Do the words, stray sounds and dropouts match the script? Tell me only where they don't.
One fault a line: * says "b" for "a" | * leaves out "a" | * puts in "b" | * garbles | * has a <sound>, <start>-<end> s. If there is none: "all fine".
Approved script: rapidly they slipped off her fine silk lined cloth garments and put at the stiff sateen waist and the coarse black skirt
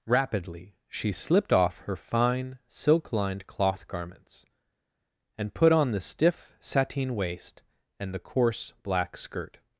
* says "she" for "they"
* says "on" for "at"